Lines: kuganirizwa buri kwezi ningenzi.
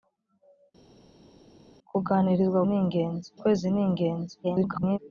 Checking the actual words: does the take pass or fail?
fail